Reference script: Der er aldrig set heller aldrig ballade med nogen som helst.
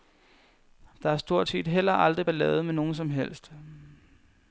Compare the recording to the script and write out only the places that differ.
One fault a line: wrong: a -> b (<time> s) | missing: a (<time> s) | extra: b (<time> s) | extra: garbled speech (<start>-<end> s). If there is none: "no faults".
wrong: aldrig -> stort (1.2 s)